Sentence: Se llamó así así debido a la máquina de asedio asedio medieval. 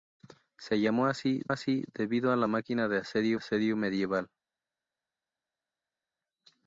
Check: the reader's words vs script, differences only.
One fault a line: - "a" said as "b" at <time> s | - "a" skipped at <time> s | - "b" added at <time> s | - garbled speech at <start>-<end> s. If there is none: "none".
none